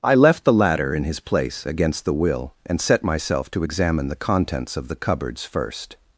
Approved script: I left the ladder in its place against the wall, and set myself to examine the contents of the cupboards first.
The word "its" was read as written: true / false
false